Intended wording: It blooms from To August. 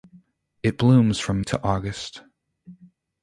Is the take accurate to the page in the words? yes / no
yes